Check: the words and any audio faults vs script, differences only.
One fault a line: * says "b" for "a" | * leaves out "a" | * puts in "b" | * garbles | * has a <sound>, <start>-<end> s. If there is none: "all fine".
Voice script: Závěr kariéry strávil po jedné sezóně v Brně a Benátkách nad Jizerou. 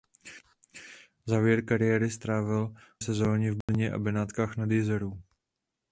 * leaves out "po jedné"
* has a dropout, 3.6-3.7 s